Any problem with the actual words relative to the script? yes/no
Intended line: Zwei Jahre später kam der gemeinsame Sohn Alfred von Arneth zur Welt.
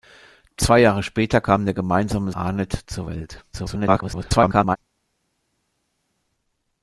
yes